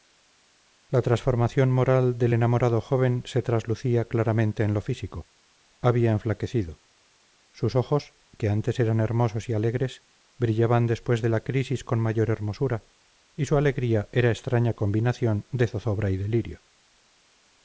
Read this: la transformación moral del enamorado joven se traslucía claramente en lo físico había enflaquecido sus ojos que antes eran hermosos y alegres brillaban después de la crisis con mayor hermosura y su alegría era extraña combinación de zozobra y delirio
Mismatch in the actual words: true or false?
false